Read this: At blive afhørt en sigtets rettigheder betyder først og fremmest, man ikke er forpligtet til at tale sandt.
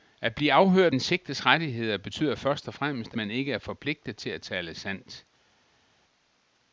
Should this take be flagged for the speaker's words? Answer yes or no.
no